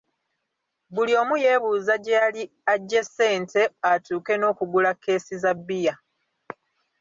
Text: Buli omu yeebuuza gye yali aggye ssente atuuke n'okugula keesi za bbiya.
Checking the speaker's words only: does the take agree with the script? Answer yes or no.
yes